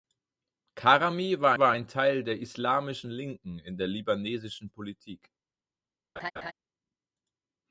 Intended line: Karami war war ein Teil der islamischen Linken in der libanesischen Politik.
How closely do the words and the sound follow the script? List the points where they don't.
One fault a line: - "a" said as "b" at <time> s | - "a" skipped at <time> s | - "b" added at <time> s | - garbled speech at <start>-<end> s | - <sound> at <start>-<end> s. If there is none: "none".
- laugh at 6.2-6.5 s